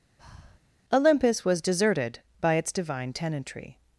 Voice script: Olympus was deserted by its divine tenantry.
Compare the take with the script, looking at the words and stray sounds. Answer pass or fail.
fail